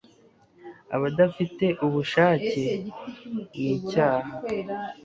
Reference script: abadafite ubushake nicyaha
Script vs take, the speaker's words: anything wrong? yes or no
no